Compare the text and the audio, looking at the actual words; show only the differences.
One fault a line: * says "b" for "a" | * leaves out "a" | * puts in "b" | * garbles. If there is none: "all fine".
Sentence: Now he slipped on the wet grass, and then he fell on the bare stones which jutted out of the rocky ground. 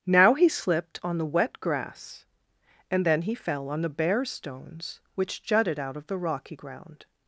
all fine